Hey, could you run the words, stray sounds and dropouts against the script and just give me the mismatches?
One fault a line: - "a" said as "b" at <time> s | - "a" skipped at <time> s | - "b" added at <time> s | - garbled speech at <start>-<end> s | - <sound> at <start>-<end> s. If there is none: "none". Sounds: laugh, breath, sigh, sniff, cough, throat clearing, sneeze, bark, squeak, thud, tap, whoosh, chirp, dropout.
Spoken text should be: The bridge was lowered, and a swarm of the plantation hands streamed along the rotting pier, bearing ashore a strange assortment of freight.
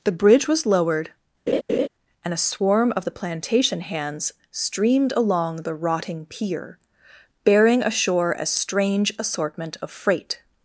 - laugh at 1.5-1.9 s